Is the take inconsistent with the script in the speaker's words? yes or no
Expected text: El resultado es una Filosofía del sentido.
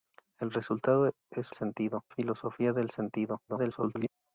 yes